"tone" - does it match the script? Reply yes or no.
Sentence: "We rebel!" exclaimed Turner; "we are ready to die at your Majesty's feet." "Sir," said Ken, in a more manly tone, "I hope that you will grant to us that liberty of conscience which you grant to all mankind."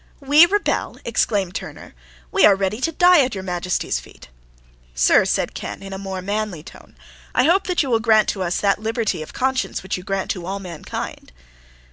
yes